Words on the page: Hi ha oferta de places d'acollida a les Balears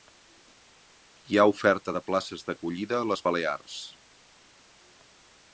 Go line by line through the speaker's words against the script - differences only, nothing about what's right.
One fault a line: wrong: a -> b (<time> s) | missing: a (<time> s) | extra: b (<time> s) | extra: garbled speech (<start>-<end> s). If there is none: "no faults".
no faults